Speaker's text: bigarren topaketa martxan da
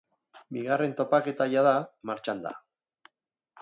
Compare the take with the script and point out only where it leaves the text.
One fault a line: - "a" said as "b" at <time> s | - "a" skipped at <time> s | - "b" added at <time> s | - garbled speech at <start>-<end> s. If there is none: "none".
- "jada" added at 1.5 s